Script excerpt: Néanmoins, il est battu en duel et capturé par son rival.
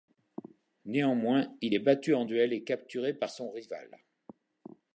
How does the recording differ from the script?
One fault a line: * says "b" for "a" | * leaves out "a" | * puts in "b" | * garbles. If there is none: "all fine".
all fine